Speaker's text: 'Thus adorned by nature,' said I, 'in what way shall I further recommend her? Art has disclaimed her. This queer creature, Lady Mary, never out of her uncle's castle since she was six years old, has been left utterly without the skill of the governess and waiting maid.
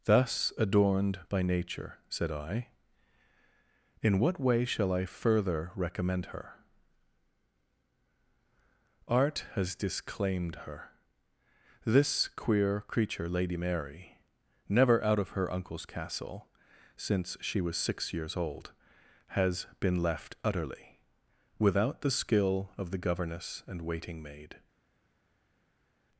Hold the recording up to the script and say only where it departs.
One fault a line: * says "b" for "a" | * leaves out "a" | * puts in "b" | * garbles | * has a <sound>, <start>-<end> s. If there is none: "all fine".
all fine